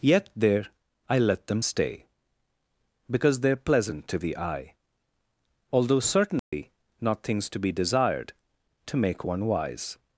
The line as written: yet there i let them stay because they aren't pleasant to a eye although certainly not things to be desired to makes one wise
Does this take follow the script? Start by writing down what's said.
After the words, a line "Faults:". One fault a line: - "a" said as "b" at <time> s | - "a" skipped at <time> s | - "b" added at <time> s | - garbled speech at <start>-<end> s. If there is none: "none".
yet there i let them stay because they are pleasant to the eye although certainly not things to be desired to make one wise
Faults:
- "aren't" said as "are" at 3.5 s
- "a" said as "the" at 4.2 s
- "makes" said as "make" at 9.0 s